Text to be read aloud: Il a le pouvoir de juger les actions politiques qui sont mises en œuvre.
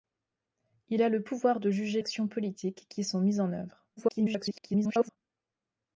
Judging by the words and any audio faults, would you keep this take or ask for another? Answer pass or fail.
fail